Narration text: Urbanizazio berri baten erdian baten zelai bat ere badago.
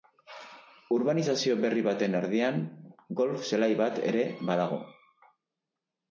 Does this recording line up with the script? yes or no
no